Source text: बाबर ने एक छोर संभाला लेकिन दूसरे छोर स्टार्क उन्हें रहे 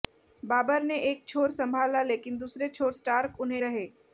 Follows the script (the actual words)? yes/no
yes